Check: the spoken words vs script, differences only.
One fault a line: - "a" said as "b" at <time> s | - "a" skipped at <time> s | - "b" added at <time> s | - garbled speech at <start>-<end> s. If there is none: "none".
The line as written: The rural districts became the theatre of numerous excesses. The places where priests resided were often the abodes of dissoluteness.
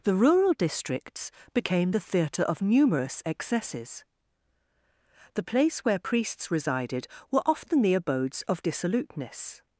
- "places" said as "place" at 5.4 s